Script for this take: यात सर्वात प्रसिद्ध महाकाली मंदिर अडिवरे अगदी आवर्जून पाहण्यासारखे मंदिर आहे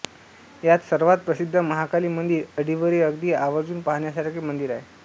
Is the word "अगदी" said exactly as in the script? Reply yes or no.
yes